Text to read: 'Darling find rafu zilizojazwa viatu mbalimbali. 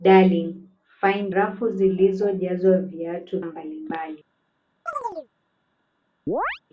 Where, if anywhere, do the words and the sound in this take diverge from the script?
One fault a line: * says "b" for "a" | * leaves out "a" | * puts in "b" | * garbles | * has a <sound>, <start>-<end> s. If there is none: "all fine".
* has a chirp, 4.9-5.3 s
* has a chirp, 6.3-6.6 s